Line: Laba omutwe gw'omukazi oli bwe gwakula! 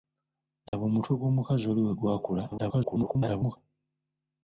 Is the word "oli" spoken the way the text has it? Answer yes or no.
yes